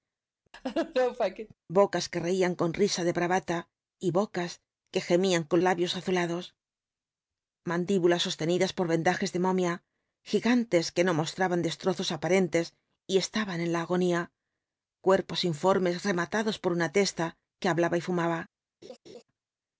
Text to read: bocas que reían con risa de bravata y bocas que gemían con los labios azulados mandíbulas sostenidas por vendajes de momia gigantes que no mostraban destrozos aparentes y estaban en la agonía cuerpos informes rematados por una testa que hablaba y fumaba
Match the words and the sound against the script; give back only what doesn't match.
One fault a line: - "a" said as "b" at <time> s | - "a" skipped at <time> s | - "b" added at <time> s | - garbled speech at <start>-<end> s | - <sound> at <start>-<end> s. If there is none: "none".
- laugh at 0.5-1.5 s
- "los" skipped at 5.6 s
- laugh at 18.8-19.2 s